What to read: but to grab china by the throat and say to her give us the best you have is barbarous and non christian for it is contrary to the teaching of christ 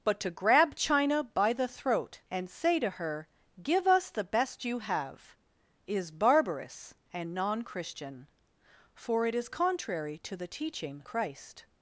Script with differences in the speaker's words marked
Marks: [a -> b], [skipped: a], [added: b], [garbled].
but to grab china by the throat and say to her give us the best you have is barbarous and non christian for it is contrary to the teaching [skipped: of] christ